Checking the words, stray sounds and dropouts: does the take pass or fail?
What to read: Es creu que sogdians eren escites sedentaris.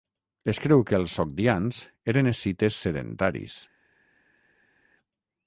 fail